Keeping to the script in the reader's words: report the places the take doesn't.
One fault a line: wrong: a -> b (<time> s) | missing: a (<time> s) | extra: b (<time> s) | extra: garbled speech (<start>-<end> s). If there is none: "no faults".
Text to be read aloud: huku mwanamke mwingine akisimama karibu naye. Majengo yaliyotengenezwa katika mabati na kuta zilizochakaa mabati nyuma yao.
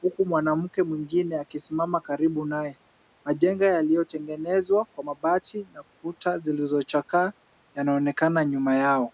wrong: katika -> kwa (4.9 s)
wrong: mabati -> yanaonekana (7.7 s)